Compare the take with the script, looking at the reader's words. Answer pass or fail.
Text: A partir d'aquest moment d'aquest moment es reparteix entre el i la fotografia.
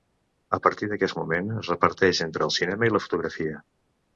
fail